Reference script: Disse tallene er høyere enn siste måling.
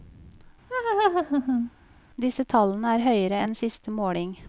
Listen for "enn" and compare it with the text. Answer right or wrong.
right